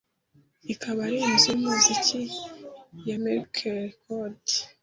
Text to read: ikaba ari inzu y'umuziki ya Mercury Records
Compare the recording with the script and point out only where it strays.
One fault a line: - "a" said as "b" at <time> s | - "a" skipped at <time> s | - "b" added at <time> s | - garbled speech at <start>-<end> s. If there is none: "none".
none